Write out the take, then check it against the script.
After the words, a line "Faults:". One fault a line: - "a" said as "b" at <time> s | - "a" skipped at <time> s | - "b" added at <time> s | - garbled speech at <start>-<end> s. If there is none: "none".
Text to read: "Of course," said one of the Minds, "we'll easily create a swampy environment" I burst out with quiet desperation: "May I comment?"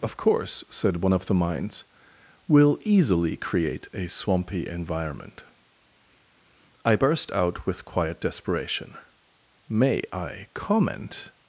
"Of course," said one of the Minds, "we'll easily create a swampy environment" I burst out with quiet desperation: "May I comment?"
Faults:
none